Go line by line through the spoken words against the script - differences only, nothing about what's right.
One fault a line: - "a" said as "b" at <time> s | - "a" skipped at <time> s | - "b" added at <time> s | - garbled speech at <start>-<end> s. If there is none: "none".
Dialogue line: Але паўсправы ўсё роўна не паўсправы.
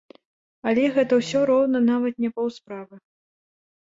- "паўсправы" said as "гэта" at 0.9 s
- "нават" added at 1.9 s